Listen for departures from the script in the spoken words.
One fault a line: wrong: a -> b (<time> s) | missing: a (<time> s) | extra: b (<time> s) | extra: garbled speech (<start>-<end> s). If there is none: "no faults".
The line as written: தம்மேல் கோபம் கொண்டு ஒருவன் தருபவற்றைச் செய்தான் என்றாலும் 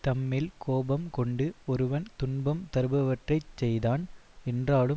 extra: துன்பம் (2.2 s)